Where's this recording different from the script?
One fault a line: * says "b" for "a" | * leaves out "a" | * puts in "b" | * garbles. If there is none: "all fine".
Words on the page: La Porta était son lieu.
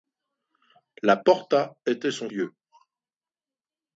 all fine